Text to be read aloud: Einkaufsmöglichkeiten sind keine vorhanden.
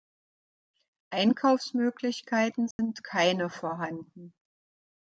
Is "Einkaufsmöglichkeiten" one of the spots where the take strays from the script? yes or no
no